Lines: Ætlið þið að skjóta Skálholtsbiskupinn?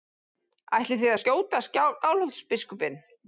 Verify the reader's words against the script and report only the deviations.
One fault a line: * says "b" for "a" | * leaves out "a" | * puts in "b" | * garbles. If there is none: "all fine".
all fine